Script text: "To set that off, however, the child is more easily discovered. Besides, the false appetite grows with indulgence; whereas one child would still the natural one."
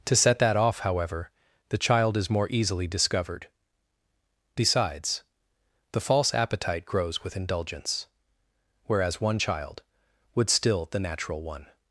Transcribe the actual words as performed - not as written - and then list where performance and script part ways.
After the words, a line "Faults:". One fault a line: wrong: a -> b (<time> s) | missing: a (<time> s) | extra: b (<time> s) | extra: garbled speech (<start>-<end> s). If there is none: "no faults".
"To set that off, however, the child is more easily discovered. Besides, the false appetite grows with indulgence; whereas one child would still the natural one."
Faults:
no faults